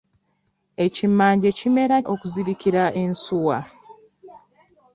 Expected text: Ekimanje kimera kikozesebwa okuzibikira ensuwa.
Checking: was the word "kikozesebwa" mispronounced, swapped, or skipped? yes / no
yes